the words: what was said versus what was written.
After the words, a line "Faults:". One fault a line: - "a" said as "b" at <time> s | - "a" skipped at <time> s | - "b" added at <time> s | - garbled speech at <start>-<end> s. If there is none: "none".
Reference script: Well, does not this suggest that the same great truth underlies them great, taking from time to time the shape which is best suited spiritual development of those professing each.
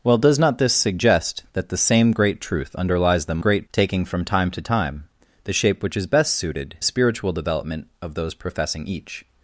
Well, does not this suggest that the same great truth underlies them great, taking from time to time the shape which is best suited spiritual development of those professing each.
Faults:
none